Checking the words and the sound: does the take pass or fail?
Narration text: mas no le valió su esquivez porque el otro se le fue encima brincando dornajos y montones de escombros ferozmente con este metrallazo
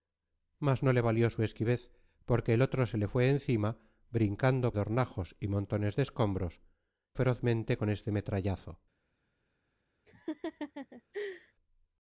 fail